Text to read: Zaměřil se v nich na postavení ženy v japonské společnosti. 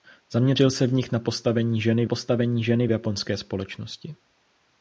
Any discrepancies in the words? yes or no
yes